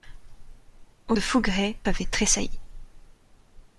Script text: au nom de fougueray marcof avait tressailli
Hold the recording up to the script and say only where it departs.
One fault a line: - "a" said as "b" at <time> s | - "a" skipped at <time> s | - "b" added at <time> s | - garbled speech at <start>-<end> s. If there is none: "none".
- "nom" skipped at 1.1 s
- "marcof" skipped at 1.8 s